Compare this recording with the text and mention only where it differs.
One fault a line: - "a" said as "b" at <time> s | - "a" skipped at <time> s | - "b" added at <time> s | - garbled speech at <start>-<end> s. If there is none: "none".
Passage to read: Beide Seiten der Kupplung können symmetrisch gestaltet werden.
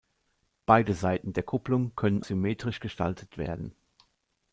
none